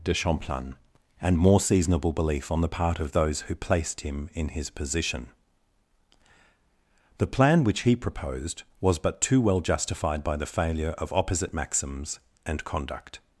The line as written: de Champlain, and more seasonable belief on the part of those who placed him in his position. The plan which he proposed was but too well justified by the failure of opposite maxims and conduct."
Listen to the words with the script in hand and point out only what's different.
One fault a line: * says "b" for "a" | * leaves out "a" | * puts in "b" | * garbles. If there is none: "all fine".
all fine